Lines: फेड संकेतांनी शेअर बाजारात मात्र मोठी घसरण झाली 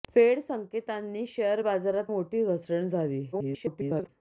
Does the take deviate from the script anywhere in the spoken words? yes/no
yes